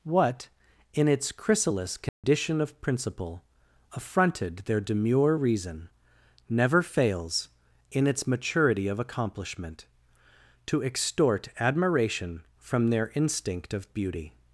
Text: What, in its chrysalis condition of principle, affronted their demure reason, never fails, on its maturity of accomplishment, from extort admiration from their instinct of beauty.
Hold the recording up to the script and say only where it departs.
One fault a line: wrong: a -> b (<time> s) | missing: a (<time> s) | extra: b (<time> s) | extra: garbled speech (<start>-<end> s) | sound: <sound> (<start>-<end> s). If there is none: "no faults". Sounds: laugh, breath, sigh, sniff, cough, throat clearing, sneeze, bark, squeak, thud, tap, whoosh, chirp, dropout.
sound: dropout (2.1-2.2 s)
wrong: on -> in (7.9 s)
wrong: from -> to (10.7 s)